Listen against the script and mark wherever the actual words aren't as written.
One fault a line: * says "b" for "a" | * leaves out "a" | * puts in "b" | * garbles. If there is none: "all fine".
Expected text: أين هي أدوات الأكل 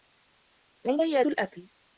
* leaves out "أدوات"